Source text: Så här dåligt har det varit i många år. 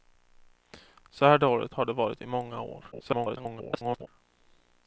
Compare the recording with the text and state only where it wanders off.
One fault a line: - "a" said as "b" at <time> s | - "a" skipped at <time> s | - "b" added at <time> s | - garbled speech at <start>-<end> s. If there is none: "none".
- garbled speech at 2.9-4.1 s